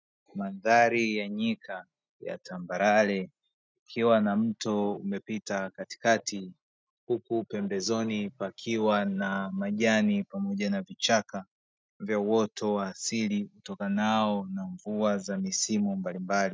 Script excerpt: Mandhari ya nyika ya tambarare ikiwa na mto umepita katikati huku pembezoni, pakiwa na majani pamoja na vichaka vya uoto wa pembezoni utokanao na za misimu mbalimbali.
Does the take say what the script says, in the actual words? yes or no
no